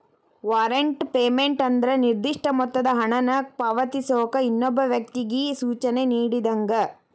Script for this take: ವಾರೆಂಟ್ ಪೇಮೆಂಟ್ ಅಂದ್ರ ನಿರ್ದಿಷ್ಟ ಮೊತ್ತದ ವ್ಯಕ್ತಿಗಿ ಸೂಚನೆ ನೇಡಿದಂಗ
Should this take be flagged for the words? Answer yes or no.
yes